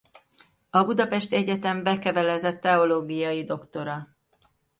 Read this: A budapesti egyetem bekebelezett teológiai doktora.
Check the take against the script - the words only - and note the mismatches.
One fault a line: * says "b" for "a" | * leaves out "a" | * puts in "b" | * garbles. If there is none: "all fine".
all fine